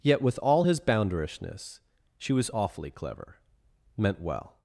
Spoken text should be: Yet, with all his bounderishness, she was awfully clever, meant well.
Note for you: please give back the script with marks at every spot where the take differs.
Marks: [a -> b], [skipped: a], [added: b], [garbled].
Yet, with all his bounderishness, she was awfully clever, meant well.